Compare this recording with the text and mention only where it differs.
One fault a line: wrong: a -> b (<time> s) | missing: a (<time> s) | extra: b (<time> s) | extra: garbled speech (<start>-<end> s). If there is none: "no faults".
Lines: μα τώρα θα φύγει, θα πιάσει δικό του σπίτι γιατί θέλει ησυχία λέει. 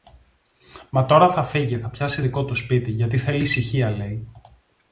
no faults